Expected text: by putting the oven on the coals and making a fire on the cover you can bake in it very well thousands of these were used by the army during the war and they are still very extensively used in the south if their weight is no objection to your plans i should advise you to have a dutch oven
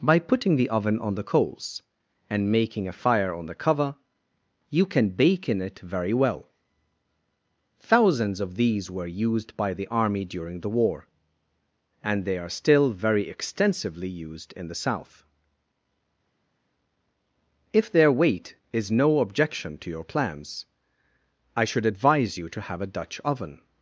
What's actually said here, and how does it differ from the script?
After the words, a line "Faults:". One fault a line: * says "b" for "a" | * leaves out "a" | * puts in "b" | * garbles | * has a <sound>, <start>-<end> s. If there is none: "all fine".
by putting the oven on the coals and making a fire on the cover you can bake in it very well thousands of these were used by the army during the war and they are still very extensively used in the south if their weight is no objection to your plans i should advise you to have a dutch oven
Faults:
all fine